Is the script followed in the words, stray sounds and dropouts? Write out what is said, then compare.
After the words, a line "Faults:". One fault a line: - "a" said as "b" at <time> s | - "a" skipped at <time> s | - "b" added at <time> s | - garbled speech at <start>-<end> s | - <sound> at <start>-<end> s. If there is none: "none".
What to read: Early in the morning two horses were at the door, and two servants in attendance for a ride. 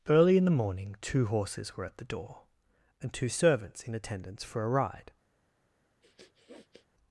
Early in the morning two horses were at the door, and two servants in attendance for a ride.
Faults:
- sniff at 6.0-6.9 s